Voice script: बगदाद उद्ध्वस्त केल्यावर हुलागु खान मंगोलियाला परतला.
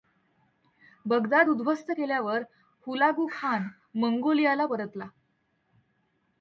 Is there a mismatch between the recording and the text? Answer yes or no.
no